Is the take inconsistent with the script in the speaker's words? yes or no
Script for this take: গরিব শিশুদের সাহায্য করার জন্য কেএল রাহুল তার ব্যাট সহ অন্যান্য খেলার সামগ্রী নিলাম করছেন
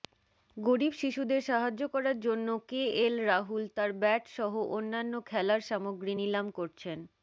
no